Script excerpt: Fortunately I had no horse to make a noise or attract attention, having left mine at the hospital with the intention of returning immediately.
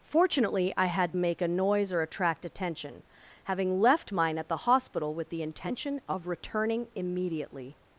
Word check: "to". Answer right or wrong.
wrong